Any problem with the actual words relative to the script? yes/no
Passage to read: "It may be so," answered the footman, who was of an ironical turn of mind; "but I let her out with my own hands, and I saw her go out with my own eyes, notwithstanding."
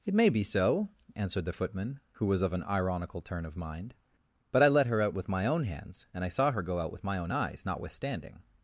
no